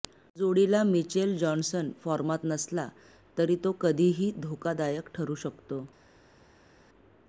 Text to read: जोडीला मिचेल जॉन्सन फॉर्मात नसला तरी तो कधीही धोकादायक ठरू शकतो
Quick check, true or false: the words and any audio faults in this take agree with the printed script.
true